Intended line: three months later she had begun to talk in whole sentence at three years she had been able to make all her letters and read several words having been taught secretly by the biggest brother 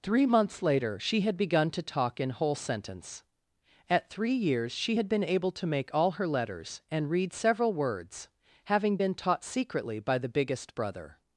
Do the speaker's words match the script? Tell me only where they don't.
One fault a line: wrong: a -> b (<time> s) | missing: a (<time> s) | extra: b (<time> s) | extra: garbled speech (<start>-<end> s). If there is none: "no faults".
no faults